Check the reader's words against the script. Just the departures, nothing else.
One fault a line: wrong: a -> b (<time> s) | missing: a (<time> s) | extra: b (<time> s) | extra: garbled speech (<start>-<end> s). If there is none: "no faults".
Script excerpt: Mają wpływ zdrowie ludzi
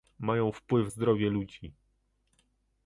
no faults